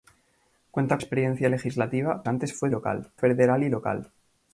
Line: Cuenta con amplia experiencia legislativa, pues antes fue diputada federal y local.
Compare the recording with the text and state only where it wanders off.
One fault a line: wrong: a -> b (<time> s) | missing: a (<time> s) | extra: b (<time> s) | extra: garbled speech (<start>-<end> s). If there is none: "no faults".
missing: con amplia (1.0 s)
missing: pues (2.2 s)
wrong: diputada -> local (2.7 s)